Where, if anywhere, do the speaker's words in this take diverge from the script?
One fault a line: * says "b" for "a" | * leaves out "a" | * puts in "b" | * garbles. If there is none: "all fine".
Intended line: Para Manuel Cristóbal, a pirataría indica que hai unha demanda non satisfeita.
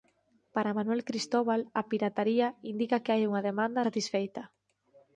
* leaves out "non"